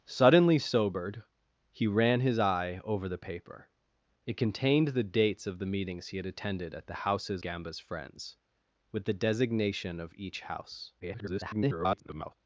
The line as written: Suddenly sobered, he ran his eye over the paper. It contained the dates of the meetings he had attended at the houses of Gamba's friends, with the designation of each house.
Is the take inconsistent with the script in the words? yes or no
yes